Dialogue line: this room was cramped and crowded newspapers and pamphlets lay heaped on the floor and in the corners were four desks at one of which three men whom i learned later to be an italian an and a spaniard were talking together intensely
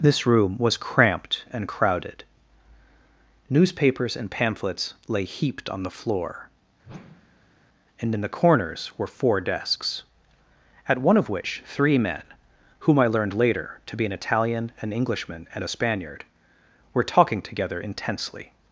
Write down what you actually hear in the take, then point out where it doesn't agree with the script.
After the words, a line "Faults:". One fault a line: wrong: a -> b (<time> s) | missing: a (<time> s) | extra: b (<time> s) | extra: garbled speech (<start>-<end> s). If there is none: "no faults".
this room was cramped and crowded newspapers and pamphlets lay heaped on the floor and in the corners were four desks at one of which three men whom i learned later to be an italian an englishman and a spaniard were talking together intensely
Faults:
extra: englishman (14.9 s)